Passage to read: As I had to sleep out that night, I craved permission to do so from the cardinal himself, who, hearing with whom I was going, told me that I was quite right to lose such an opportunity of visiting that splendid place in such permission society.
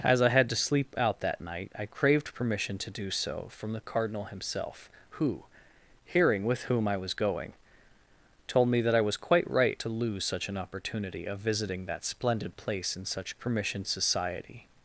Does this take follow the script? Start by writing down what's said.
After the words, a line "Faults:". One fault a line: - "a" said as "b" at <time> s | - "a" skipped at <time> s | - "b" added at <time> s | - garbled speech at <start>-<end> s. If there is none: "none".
As I had to sleep out that night, I craved permission to do so from the cardinal himself, who, hearing with whom I was going, told me that I was quite right to lose such an opportunity of visiting that splendid place in such permission society.
Faults:
none